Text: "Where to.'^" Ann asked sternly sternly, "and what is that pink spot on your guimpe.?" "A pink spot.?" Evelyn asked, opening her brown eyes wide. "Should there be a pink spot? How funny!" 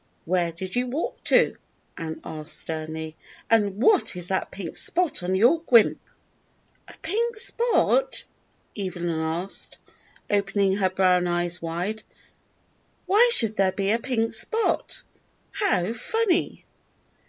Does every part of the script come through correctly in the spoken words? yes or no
no